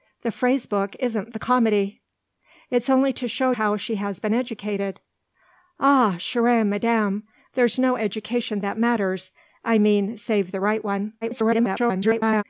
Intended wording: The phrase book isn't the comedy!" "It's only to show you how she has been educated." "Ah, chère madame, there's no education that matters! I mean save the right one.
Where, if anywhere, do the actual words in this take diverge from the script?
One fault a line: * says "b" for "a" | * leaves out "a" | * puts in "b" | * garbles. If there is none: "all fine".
* leaves out "you"
* garbles